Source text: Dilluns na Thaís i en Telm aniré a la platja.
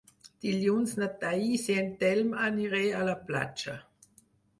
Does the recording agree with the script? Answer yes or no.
yes